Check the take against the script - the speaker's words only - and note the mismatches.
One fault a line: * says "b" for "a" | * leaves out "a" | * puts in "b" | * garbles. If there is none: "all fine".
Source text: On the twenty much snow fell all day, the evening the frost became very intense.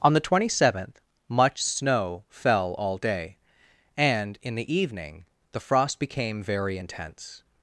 * puts in "seventh"
* puts in "and in"